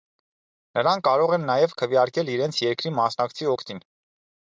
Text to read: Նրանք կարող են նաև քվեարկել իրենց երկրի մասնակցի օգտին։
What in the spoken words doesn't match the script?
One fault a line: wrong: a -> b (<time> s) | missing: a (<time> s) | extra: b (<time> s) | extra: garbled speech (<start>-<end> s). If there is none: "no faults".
no faults